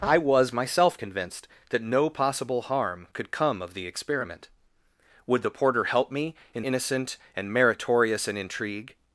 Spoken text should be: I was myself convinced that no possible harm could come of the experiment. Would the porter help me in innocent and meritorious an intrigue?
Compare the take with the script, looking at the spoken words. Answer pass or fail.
pass